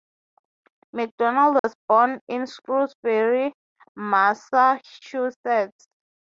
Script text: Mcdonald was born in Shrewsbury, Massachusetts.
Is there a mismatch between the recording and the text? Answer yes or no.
no